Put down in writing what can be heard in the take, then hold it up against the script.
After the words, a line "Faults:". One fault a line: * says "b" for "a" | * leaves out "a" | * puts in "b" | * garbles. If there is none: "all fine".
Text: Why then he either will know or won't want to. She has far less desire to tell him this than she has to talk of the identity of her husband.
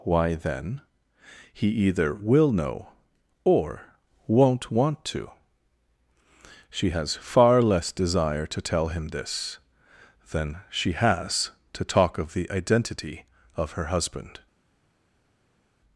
Why then he either will know or won't want to. She has far less desire to tell him this than she has to talk of the identity of her husband.
Faults:
all fine